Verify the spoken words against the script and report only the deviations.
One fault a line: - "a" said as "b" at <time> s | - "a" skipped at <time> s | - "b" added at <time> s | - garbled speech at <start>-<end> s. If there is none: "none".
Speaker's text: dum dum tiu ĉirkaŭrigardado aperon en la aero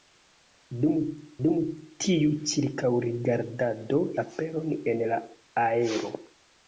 none